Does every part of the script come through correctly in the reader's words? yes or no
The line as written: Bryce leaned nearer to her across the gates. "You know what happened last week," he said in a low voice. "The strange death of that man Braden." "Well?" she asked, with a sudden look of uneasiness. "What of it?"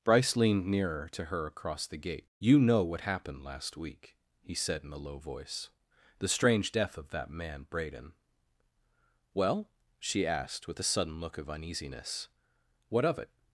no